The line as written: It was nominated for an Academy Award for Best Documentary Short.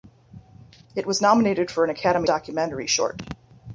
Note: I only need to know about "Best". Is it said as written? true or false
false